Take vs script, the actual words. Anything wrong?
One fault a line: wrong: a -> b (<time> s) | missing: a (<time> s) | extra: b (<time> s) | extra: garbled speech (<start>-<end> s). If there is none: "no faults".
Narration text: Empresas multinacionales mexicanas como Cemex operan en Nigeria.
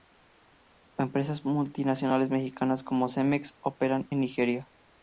no faults